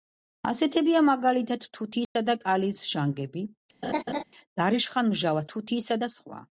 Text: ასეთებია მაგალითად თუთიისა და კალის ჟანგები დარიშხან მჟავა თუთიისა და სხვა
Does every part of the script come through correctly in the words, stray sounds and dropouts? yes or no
no